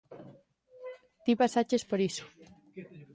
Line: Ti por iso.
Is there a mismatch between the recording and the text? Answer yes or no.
yes